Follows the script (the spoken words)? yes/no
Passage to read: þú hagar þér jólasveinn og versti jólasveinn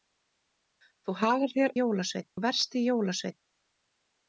yes